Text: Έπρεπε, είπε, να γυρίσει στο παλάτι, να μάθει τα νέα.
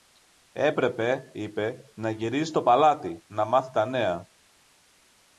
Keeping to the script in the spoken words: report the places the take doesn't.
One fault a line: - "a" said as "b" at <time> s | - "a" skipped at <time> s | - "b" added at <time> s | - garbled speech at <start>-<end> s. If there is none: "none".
none